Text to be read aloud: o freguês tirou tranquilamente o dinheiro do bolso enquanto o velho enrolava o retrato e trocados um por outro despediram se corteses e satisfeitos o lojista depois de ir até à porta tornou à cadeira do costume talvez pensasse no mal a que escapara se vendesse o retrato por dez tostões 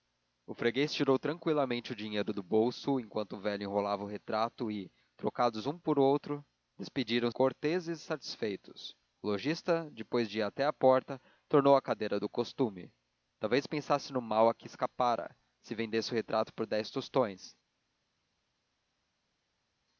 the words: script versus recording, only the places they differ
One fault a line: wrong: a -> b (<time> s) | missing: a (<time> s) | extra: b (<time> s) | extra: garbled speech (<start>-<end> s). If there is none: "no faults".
missing: se (7.3 s)